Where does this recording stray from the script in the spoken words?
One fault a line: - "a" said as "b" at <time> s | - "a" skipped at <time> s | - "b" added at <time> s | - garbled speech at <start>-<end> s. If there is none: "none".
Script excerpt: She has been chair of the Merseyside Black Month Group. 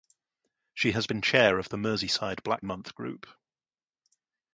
none